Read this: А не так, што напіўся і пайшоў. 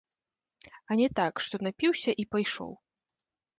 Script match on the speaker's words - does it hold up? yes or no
yes